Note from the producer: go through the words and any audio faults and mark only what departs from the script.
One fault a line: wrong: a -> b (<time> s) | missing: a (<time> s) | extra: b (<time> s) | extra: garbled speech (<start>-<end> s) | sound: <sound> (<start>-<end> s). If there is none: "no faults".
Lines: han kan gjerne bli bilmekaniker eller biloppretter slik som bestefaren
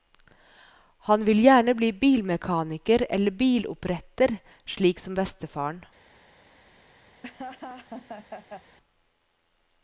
wrong: kan -> vil (1.2 s)
sound: laugh (7.2-8.8 s)